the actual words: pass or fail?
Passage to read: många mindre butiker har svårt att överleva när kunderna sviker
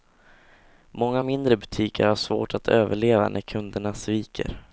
pass